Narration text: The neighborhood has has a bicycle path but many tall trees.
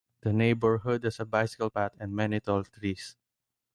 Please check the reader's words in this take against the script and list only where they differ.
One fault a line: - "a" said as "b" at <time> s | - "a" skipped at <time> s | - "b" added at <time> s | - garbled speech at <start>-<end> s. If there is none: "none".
- "has" skipped at 1.2 s
- "but" said as "and" at 2.0 s